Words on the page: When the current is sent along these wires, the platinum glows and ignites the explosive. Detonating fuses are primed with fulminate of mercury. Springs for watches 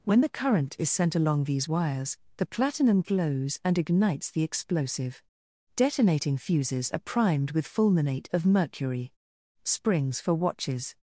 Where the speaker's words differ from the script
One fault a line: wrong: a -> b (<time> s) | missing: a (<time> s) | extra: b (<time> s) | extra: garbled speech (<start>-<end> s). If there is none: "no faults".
no faults